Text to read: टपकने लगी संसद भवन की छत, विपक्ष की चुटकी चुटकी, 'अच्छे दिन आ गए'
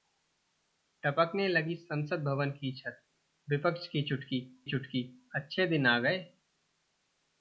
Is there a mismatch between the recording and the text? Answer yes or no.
no